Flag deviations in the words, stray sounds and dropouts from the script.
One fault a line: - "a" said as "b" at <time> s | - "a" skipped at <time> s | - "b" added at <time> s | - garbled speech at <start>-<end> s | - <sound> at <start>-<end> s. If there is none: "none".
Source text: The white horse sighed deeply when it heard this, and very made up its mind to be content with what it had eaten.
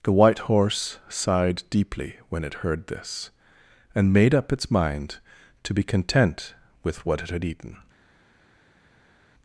- "very" skipped at 4.1 s